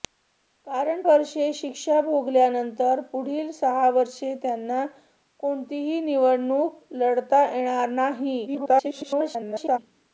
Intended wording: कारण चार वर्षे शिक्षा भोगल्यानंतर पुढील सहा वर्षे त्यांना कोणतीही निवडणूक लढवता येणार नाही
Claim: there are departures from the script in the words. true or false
true